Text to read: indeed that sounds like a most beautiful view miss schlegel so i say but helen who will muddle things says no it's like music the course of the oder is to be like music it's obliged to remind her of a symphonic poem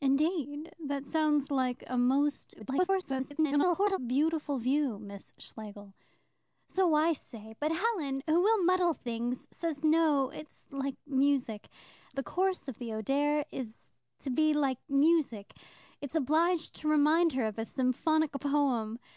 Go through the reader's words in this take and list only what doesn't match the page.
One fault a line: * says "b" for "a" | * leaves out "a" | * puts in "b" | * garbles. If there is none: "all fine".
* garbles